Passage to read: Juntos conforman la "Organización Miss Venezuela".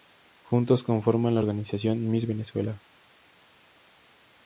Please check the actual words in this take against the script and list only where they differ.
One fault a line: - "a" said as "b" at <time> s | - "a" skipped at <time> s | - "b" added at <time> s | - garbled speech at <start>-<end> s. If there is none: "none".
none